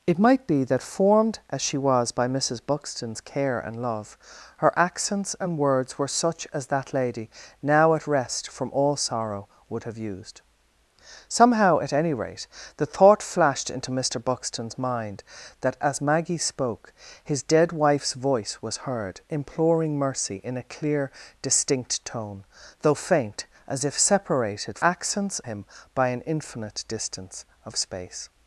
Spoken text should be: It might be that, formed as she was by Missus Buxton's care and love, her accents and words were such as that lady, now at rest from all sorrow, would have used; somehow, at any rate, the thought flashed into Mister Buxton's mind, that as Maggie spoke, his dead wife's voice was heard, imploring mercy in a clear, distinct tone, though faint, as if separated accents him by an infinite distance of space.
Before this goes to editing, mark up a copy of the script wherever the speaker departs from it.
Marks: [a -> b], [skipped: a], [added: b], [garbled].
It might be that, formed as she was by Missus Buxton's care and love, her accents and words were such as that lady, now at rest from all sorrow, would have used; somehow, at any rate, the thought flashed into Mister Buxton's mind, that as Maggie spoke, his dead wife's voice was heard, imploring mercy in a clear, distinct tone, though faint, as if separated accents him by an infinite distance of space.